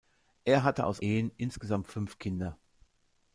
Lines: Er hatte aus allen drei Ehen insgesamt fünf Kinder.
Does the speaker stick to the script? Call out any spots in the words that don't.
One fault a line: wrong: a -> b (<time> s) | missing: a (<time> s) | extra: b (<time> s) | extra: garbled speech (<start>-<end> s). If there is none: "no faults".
missing: allen drei (1.0 s)